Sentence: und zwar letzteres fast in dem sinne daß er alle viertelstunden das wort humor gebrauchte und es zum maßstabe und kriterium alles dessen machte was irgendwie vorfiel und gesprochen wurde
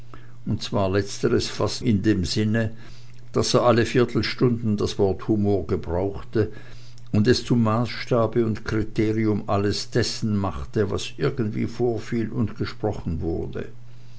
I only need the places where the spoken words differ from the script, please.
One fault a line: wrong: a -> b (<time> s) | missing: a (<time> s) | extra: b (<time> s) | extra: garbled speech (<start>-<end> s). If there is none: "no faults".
no faults